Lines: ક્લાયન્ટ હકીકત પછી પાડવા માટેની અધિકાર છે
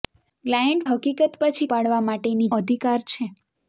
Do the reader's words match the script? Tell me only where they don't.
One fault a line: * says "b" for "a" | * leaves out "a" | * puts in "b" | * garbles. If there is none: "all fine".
all fine